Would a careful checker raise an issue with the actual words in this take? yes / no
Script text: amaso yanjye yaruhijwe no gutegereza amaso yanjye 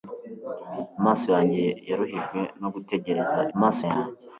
no